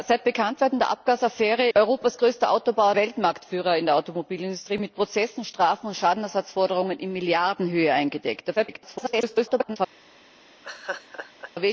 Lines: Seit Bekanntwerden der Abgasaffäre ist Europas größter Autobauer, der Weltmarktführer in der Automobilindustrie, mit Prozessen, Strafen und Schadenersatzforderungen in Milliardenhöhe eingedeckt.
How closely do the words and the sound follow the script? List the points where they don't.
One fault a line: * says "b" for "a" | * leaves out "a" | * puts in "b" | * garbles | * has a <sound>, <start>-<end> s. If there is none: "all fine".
* leaves out "ist"
* leaves out "der"
* garbles
* has a laugh, 10.6-11.5 s